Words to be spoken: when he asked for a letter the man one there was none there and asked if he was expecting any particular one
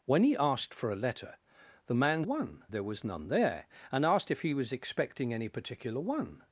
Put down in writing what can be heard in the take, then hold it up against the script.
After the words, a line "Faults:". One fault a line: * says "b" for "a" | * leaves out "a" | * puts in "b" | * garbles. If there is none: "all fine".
when he asked for a letter the man one there was none there and asked if he was expecting any particular one
Faults:
all fine